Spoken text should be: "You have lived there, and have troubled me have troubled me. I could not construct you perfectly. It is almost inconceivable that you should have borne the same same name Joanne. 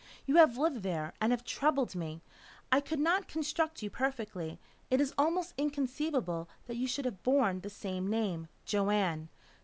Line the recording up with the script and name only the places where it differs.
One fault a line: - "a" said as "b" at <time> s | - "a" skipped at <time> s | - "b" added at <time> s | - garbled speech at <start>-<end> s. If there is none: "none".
- "have troubled me" skipped at 2.2 s
- "same" skipped at 8.1 s